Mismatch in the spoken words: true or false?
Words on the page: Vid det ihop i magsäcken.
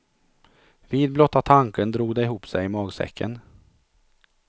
true